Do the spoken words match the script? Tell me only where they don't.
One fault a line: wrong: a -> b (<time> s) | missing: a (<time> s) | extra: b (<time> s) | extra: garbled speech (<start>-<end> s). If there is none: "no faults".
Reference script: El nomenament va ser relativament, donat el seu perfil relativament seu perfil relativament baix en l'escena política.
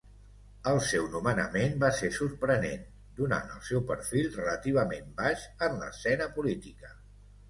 extra: seu (0.9 s)
wrong: relativament -> sorprenent (2.2 s)
missing: seu perfil relativament (5.1 s)